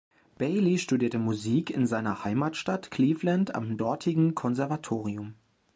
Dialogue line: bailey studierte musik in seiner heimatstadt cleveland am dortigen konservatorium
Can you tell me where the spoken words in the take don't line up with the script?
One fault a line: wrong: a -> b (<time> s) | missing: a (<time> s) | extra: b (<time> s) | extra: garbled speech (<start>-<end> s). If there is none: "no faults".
no faults